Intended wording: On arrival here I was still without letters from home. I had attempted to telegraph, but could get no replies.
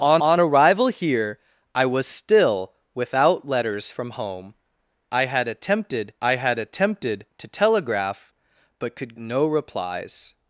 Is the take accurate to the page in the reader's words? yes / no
no